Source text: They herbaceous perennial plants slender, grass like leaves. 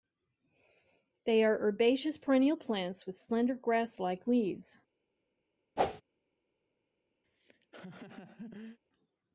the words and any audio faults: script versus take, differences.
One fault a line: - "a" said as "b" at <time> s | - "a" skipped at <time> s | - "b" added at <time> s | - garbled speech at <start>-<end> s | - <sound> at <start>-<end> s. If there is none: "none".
- "are" added at 1.4 s
- "with" added at 3.0 s
- whoosh at 5.8-6.0 s
- laugh at 7.2-8.8 s